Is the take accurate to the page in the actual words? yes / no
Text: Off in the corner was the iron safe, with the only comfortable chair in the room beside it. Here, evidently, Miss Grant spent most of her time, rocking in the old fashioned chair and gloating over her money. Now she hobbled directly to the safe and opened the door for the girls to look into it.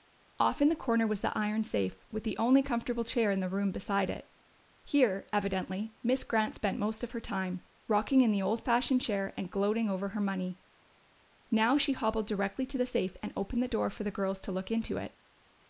yes